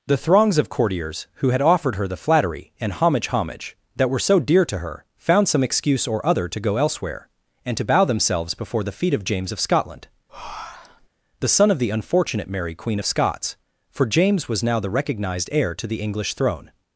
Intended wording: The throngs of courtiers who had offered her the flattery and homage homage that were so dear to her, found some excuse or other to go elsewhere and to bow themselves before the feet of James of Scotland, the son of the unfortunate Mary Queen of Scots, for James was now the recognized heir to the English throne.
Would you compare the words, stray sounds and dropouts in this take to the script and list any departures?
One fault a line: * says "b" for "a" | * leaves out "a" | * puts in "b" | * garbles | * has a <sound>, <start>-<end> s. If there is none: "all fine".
* has a breath, 10.3-11.1 s